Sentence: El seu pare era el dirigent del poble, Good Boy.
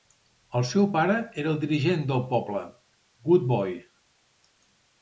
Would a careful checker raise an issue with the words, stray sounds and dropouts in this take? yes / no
no